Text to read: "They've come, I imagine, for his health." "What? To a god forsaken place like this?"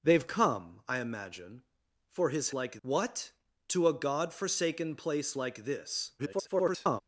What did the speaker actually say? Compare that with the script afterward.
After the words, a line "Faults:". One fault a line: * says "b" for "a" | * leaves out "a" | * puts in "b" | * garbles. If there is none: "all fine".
"They've come, I imagine, for his like." "What? To a god forsaken place like this?" [garbled]
Faults:
* says "like" for "health"
* garbles